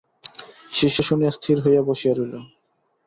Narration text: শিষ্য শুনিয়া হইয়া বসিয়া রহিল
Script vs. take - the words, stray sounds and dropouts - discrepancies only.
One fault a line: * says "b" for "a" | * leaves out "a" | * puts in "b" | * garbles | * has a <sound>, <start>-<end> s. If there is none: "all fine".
* puts in "স্থির"